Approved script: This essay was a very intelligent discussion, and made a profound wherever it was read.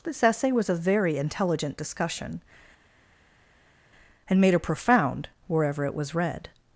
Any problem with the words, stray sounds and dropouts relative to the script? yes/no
no